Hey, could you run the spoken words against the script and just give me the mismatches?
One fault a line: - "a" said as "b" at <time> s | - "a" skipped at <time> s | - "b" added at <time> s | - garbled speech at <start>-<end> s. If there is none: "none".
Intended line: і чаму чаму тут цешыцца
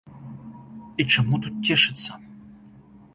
- "чаму" skipped at 1.4 s